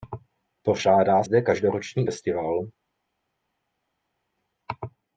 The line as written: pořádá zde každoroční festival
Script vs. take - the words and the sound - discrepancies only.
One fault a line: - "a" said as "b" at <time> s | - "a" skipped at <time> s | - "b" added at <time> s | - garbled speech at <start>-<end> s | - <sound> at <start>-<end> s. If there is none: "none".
none